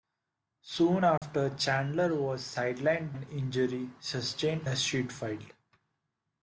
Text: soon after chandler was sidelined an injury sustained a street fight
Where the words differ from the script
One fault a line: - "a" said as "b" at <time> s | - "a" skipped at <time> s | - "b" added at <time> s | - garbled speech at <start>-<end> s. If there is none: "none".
none